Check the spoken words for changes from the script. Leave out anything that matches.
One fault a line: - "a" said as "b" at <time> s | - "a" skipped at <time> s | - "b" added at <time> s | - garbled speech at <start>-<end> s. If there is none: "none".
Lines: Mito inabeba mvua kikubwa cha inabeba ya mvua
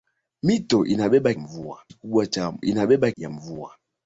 none